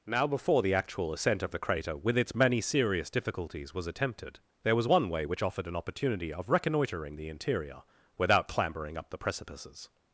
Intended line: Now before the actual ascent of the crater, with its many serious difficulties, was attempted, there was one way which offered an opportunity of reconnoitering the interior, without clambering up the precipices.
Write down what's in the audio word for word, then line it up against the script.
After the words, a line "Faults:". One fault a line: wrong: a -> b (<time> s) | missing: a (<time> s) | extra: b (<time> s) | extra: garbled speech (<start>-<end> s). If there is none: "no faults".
Now before the actual ascent of the crater, with its many serious difficulties, was attempted, there was one way which offered an opportunity of reconnoitering the interior, without clambering up the precipices.
Faults:
no faults